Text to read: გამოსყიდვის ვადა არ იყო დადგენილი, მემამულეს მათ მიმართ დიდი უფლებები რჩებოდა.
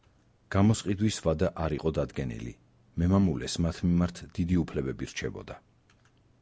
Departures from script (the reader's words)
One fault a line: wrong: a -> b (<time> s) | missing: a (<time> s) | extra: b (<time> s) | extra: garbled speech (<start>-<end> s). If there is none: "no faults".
no faults